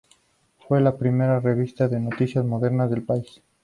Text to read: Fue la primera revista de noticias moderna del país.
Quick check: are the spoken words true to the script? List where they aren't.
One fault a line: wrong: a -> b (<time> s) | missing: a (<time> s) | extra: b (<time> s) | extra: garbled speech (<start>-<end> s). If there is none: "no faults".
no faults